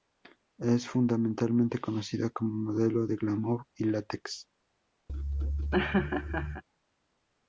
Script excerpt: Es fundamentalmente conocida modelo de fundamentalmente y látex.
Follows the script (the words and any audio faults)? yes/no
no